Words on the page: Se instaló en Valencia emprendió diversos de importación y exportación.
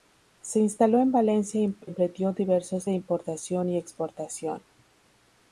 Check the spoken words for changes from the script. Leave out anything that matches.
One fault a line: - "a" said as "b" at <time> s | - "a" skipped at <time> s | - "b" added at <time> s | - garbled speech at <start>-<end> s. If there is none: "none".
none